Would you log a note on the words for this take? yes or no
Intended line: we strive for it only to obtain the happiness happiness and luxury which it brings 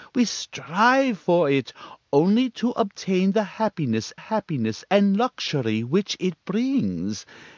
no